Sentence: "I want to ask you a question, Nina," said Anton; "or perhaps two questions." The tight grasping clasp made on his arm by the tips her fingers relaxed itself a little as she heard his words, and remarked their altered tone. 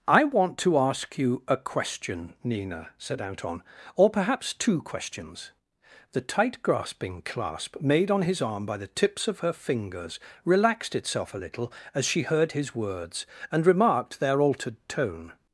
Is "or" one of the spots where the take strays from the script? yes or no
no